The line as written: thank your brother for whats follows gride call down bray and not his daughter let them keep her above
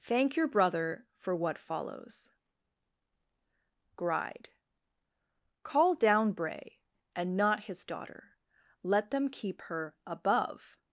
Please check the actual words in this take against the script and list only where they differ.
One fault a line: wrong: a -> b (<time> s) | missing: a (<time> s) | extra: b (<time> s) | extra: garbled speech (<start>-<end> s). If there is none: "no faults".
wrong: whats -> what (1.4 s)